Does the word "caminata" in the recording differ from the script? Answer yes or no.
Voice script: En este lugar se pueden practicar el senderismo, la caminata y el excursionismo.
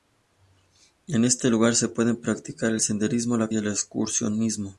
yes